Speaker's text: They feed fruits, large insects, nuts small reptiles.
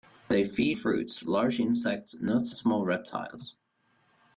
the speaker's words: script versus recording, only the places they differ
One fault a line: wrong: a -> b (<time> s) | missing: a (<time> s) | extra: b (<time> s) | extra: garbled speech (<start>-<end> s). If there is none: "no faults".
no faults